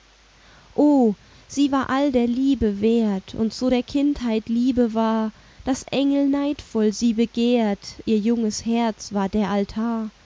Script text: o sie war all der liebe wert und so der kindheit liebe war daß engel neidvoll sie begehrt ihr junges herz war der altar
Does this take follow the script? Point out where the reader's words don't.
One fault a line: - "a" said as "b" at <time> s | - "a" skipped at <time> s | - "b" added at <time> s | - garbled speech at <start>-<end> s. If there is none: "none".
none